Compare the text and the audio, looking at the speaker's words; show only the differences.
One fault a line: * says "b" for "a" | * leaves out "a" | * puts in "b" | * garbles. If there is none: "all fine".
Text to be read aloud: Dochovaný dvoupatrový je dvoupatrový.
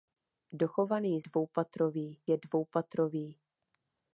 all fine